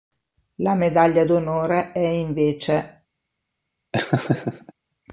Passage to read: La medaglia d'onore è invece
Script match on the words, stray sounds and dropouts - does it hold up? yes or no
no